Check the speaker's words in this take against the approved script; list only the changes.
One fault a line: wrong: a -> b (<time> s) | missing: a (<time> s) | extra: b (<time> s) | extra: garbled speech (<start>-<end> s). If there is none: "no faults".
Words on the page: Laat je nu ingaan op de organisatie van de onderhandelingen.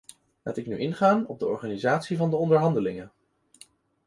wrong: je -> ik (0.6 s)